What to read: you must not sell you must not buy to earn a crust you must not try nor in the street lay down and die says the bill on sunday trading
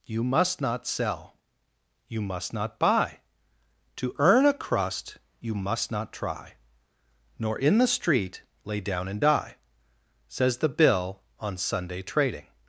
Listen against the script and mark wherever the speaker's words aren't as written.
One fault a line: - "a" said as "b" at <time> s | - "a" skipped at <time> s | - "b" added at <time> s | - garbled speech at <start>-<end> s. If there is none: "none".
none